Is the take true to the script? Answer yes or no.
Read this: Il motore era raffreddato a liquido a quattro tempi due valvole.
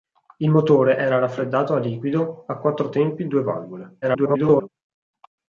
no